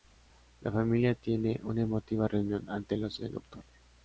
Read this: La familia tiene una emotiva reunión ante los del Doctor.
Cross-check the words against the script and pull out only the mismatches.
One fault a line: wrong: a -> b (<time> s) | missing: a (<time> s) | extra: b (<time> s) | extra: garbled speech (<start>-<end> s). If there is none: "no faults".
no faults